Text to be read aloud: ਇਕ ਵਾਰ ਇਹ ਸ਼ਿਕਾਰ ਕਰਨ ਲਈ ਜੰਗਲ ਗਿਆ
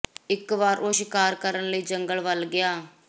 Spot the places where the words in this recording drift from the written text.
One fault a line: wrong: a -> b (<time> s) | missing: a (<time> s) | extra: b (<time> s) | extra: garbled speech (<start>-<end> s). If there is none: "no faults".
wrong: ਇਹ -> ਉਹ (0.8 s)
extra: ਵੱਲ (2.2 s)